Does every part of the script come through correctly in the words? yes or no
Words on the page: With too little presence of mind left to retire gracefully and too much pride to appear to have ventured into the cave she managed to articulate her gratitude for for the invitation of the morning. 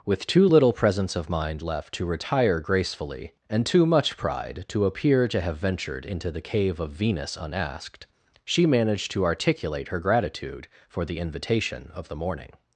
no